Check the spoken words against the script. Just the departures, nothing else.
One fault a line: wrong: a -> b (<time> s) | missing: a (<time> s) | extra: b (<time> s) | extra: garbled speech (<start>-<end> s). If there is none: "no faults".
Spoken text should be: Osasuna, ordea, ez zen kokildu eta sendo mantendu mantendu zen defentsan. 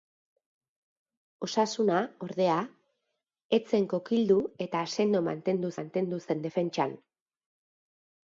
no faults